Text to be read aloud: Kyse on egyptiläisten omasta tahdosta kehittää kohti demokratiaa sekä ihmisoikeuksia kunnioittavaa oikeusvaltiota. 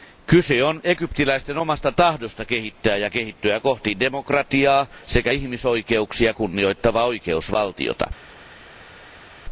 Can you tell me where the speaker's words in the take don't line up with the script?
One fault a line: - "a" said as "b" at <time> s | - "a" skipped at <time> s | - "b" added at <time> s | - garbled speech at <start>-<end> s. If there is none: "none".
- "ja kehittyä" added at 3.0 s